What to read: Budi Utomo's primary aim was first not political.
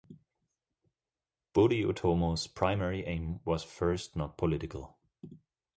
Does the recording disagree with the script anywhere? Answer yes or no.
no